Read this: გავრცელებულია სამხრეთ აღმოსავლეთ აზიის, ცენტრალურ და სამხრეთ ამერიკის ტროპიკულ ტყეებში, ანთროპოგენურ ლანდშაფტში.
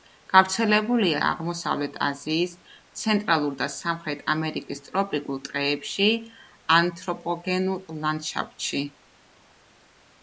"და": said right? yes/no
yes